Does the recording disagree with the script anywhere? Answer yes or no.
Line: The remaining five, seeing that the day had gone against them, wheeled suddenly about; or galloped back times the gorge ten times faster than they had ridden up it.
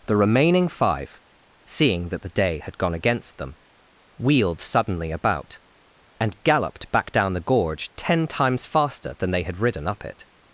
yes